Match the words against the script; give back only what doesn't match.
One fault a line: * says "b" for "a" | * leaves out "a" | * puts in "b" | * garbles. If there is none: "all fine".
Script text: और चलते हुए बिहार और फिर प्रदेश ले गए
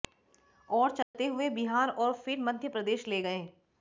* puts in "मध्य"